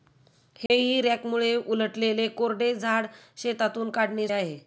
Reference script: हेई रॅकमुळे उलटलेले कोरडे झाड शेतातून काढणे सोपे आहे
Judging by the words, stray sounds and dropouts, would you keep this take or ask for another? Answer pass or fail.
fail